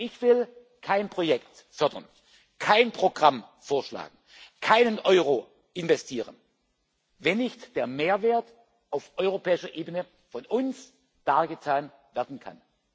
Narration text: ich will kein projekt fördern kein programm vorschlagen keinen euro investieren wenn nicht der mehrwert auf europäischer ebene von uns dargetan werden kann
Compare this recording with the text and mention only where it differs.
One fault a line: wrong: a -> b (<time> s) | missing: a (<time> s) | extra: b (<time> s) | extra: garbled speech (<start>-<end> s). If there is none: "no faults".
no faults